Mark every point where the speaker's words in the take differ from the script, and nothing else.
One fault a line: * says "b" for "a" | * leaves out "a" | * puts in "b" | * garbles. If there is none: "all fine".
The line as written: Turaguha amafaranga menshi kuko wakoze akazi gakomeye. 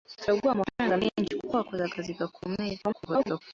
* garbles